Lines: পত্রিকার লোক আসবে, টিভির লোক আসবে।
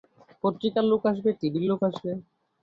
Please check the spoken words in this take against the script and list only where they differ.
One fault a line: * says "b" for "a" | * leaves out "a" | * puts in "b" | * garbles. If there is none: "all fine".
all fine